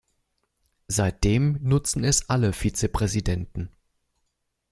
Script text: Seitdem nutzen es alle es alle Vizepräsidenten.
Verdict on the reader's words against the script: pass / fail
fail